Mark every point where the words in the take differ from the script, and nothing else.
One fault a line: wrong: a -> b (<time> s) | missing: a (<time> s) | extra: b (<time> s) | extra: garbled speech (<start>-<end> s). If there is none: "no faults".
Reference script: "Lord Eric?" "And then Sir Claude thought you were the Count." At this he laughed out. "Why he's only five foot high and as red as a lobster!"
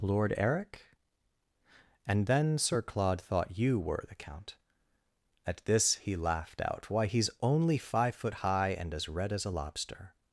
no faults